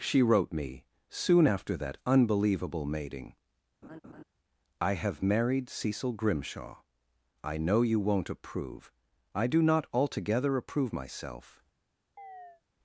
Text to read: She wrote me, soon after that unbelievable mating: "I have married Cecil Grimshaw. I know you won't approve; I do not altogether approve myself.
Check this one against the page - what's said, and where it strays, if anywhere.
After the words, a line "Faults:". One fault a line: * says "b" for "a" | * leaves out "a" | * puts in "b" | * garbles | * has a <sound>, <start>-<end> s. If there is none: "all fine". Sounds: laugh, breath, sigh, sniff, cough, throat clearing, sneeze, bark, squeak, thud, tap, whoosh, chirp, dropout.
She wrote me, soon after that unbelievable mating: "I have married Cecil Grimshaw. I know you won't approve; I do not altogether approve myself.
Faults:
* has a laugh, 3.8-4.2 s
* has a chirp, 12.2-12.6 s